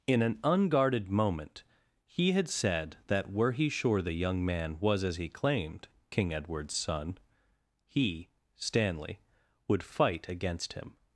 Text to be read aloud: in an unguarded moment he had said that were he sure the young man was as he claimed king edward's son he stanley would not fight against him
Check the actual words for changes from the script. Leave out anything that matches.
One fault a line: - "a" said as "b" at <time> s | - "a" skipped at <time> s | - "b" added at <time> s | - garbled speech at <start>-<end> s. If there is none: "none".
- "not" skipped at 9.8 s